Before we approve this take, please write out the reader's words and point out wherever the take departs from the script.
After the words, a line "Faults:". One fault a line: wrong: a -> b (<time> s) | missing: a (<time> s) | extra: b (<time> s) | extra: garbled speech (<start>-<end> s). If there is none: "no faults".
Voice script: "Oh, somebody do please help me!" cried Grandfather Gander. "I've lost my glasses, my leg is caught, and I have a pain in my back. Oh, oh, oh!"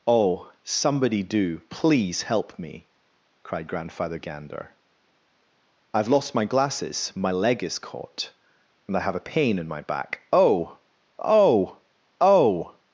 "Oh, somebody do please help me!" cried Grandfather Gander. "I've lost my glasses, my leg is caught, and I have a pain in my back. Oh, oh, oh!"
Faults:
no faults